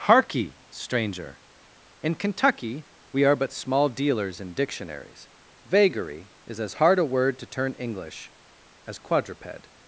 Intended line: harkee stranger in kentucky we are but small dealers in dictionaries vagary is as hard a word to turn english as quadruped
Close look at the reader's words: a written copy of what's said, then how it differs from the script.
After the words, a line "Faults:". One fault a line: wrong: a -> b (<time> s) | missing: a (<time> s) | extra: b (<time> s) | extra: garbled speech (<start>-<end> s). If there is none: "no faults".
harkee stranger in kentucky we are but small dealers in dictionaries vagary is as hard a word to turn english as quadruped
Faults:
no faults